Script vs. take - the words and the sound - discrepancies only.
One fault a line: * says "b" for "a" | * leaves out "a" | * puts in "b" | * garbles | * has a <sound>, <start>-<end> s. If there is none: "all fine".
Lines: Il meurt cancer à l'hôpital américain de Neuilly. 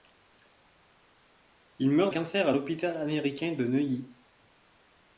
all fine